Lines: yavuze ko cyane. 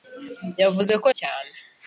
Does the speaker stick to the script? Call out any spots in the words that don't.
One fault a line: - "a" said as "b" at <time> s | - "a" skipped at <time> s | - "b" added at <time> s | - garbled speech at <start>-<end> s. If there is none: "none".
none